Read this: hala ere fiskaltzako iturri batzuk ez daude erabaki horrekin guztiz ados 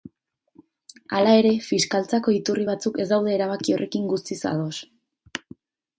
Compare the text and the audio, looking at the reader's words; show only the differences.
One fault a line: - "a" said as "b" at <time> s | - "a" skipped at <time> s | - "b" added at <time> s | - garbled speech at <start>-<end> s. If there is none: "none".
none